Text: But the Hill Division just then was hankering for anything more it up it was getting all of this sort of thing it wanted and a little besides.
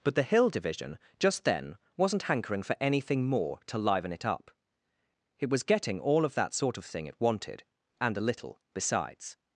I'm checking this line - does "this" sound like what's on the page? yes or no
no